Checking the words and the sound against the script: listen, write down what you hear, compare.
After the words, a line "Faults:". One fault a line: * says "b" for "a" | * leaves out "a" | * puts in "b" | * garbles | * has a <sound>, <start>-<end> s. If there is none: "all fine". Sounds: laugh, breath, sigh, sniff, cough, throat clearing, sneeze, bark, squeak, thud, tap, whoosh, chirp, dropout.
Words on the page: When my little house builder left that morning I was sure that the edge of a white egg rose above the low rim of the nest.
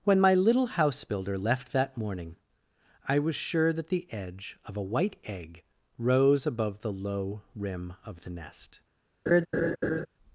When my little house builder left that morning I was sure that the edge of a white egg rose above the low rim of the nest.
Faults:
* has a laugh, 9.3-10.1 s